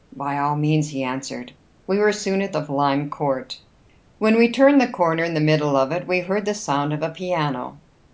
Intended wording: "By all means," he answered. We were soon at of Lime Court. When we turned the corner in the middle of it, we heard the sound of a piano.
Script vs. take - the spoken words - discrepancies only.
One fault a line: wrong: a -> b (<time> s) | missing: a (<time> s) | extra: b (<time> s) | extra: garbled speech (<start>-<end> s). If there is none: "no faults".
no faults